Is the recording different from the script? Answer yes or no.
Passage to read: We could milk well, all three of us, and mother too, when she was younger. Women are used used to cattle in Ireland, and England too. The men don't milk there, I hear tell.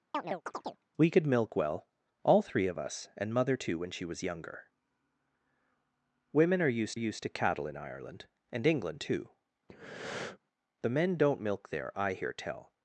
no